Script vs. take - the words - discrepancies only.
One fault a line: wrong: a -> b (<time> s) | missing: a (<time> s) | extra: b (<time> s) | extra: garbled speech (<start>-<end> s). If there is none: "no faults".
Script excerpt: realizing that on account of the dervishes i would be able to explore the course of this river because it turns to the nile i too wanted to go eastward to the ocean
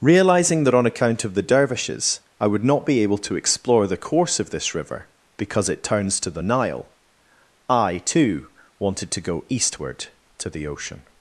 extra: not (2.6 s)